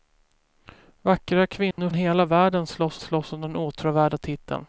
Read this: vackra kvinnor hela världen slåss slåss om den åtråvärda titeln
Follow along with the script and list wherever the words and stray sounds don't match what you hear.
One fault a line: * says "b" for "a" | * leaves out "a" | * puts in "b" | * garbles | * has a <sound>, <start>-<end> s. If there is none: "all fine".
* has a dropout, 1.7-1.8 s